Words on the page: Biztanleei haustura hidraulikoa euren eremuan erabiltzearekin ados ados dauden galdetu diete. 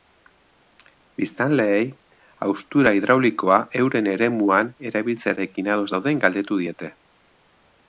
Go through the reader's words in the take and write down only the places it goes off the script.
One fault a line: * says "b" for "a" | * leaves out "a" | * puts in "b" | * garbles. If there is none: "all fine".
* leaves out "ados"